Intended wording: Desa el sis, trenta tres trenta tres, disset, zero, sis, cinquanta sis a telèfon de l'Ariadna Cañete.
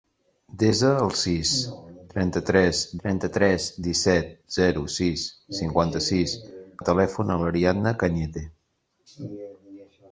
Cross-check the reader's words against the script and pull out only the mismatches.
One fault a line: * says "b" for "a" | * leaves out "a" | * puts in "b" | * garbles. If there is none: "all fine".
all fine